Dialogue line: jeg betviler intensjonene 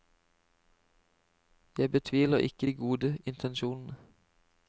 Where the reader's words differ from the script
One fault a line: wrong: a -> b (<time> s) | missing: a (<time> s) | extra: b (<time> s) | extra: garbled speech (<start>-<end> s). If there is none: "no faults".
extra: ikke de gode (2.4 s)